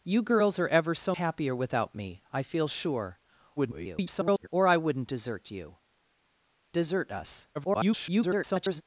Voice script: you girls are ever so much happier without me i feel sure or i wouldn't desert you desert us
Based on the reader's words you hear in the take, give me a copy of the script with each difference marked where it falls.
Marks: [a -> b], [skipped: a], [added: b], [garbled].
you girls are ever so [skipped: much] happier without me i feel sure [garbled] or i wouldn't desert you desert us [garbled]